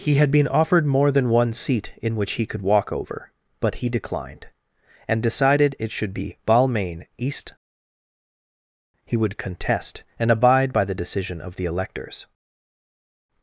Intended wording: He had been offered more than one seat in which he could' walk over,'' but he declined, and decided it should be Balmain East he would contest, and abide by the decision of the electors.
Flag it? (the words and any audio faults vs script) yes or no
no